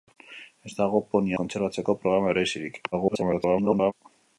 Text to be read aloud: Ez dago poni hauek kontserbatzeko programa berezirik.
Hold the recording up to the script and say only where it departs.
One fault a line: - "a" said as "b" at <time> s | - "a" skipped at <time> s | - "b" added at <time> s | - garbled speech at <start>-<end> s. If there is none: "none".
- "hauek" skipped at 1.4 s
- garbled speech at 2.9-3.9 s